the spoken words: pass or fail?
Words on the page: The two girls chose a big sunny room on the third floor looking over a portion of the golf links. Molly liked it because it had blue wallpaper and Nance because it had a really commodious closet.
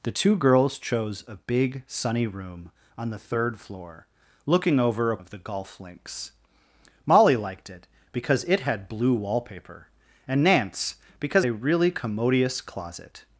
fail